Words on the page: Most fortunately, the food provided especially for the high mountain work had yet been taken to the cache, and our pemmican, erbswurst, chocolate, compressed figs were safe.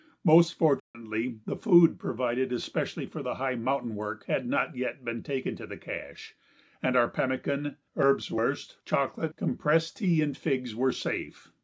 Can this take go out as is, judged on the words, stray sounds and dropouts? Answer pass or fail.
fail